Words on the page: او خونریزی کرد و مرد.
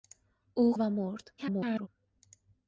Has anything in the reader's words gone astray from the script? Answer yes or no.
yes